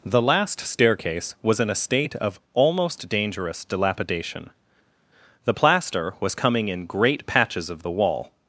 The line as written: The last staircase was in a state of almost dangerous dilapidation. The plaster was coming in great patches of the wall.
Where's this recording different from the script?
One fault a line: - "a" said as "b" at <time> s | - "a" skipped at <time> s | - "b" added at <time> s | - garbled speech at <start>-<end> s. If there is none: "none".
none